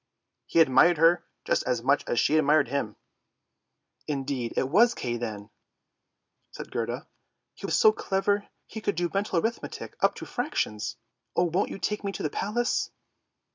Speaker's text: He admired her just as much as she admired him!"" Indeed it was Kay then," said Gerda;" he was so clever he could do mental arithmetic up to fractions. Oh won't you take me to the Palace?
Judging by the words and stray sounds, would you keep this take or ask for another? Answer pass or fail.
pass